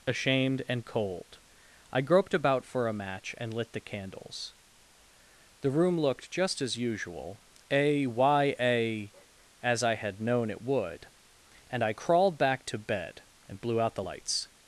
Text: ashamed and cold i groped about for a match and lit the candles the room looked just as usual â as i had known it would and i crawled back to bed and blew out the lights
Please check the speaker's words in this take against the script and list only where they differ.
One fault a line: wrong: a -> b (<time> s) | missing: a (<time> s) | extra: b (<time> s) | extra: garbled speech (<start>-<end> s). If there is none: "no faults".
wrong: â -> a y a (7.7 s)